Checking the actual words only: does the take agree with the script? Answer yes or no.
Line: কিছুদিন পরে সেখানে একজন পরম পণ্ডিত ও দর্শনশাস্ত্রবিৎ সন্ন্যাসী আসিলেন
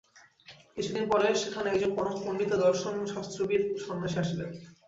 yes